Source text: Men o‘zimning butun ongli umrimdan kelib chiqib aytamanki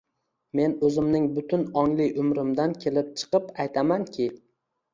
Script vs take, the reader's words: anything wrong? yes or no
no